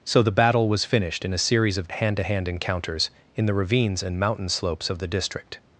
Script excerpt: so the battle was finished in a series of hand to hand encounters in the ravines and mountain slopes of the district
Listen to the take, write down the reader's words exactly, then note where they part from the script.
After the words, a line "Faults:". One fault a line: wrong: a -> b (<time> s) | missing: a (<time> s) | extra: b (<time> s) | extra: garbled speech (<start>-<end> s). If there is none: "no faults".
so the battle was finished in a series of hand to hand encounters in the ravines and mountain slopes of the district
Faults:
no faults